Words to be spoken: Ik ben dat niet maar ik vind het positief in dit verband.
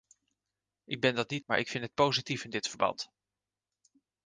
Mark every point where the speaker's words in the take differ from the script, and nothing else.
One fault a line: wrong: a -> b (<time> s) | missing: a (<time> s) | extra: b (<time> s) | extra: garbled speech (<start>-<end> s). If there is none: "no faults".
no faults